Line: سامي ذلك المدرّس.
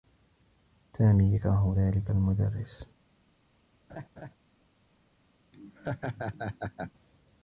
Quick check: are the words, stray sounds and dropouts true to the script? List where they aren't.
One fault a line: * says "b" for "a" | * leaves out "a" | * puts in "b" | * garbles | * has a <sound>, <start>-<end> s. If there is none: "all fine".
* puts in "يكره"
* has a laugh, 3.9-4.3 s
* has a laugh, 5.5-6.9 s